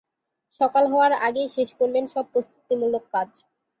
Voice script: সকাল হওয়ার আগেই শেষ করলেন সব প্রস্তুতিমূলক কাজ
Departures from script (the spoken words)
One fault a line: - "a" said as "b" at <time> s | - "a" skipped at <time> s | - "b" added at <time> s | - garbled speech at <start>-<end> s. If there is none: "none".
none